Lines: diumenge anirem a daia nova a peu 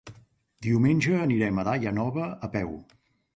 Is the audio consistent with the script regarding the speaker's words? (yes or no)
yes